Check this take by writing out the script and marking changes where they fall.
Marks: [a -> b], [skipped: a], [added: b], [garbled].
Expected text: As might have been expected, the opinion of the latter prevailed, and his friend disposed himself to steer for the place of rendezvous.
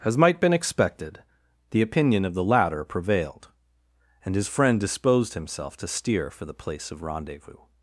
As might [skipped: have] been expected, the opinion of the latter prevailed, and his friend disposed himself to steer for the place of rendezvous.